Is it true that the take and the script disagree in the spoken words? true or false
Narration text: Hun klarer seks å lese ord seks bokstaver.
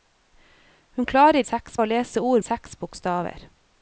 false